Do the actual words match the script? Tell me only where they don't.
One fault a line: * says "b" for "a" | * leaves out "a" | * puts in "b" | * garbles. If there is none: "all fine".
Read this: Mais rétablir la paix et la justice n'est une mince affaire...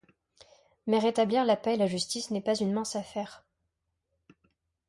* puts in "pas"